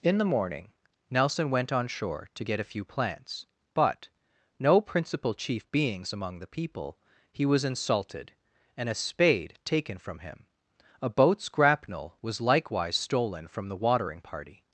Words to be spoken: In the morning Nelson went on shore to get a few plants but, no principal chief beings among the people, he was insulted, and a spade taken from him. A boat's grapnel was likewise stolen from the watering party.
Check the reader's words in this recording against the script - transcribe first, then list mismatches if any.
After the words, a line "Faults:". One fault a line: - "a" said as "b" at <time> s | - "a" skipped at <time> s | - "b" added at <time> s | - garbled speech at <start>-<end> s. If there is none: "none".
In the morning Nelson went on shore to get a few plants but, no principal chief beings among the people, he was insulted, and a spade taken from him. A boat's grapnel was likewise stolen from the watering party.
Faults:
none